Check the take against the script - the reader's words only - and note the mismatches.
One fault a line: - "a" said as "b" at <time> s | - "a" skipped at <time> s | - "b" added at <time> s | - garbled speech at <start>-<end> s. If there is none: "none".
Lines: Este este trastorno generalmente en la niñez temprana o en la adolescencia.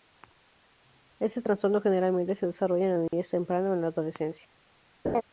- "este" skipped at 1.4 s
- "se desarrolla" added at 2.3 s